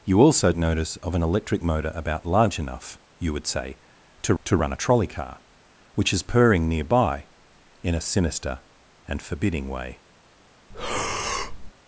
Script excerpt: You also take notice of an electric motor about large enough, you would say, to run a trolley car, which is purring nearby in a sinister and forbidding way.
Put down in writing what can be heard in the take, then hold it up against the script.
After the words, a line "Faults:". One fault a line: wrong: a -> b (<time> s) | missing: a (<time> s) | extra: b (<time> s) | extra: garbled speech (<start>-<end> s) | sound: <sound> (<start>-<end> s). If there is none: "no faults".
You also notice of an electric motor about large enough, you would say, to to run a trolley car, which is purring nearby in a sinister and forbidding way.
Faults:
missing: take (0.5 s)
extra: to (4.4 s)
sound: breath (10.7-11.7 s)